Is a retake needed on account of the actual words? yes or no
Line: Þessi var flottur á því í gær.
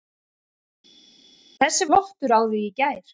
yes